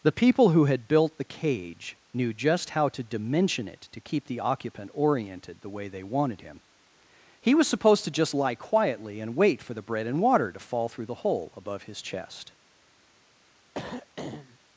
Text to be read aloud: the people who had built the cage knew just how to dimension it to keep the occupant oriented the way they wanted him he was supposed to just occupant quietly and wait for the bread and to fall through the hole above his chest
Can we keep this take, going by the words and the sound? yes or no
no